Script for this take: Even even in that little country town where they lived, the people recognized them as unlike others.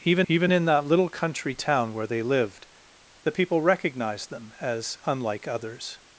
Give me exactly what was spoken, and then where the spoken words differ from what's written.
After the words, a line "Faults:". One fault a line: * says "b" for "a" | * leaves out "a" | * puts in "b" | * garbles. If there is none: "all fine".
Even even in that little country town where they lived, the people recognized them as unlike others.
Faults:
all fine